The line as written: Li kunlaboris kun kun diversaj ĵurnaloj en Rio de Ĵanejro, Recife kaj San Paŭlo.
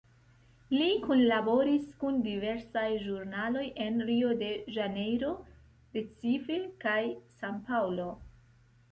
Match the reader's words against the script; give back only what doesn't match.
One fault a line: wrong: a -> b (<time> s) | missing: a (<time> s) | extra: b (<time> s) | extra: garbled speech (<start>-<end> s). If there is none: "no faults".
missing: kun (2.1 s)